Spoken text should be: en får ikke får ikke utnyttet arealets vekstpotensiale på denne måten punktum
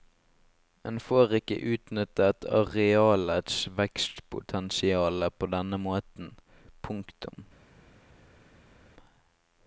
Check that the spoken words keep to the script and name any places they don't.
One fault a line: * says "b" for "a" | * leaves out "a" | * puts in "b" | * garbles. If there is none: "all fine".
* leaves out "får ikke"